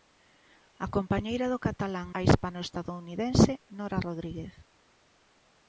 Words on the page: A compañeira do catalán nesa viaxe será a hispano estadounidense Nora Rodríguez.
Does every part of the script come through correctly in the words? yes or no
no